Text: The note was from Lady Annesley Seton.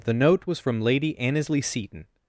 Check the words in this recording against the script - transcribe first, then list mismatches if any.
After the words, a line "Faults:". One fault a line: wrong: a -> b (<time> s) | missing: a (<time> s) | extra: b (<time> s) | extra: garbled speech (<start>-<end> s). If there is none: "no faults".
The note was from Lady Annesley Seton.
Faults:
no faults